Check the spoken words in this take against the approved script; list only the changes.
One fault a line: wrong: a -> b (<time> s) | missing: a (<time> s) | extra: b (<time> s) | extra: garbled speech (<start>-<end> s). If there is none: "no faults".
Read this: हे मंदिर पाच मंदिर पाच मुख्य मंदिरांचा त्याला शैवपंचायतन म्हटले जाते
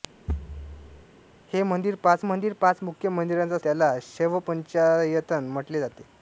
no faults